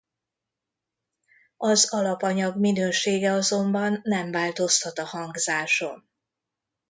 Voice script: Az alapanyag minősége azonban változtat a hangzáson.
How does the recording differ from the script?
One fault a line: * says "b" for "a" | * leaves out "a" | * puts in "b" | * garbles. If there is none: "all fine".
* puts in "nem"